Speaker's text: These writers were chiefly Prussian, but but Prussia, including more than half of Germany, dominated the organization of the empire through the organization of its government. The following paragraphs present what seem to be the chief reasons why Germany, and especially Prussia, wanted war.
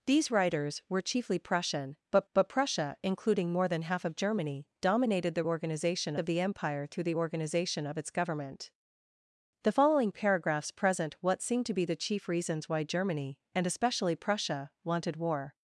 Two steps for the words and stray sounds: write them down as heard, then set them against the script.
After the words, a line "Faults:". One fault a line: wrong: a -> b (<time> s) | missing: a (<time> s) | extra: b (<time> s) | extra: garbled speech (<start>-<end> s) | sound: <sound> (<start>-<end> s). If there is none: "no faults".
These writers were chiefly Prussian, but but Prussia, including more than half of Germany, dominated the organization of the empire through the organization of its government. The following paragraphs present what seem to be the chief reasons why Germany, and especially Prussia, wanted war.
Faults:
no faults